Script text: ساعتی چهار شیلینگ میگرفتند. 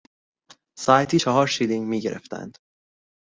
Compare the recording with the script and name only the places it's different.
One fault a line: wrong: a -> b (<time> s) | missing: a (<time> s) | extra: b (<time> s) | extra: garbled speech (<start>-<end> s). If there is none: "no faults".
no faults